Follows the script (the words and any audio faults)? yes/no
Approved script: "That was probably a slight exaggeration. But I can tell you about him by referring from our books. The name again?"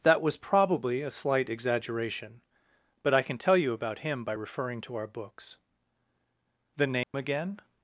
no